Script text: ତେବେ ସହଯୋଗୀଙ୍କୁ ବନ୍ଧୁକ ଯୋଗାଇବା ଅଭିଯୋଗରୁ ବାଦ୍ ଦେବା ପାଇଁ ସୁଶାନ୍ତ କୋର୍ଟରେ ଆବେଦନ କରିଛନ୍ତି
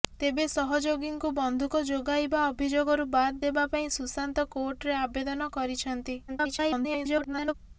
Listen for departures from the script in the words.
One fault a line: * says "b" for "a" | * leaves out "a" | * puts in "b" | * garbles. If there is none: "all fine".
* garbles